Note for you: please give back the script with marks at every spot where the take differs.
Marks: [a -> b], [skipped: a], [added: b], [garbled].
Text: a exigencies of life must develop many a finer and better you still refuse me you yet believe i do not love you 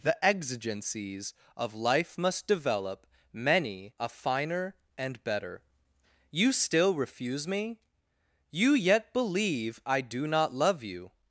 [a -> the] exigencies of life must develop many a finer and better you still refuse me you yet believe i do not love you